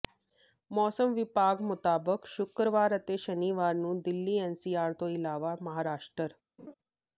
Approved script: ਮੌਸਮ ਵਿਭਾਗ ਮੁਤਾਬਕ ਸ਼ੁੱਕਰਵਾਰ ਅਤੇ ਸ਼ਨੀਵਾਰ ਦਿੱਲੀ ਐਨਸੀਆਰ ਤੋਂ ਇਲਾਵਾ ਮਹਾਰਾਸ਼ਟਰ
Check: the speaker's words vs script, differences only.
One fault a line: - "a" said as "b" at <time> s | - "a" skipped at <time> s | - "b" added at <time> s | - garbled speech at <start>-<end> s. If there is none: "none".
- "ਨੂੰ" added at 3.8 s